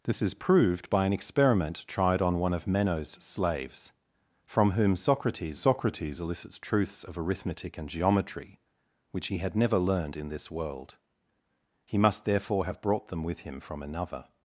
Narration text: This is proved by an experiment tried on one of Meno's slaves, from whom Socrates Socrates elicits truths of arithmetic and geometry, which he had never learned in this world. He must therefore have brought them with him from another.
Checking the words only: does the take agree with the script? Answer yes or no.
yes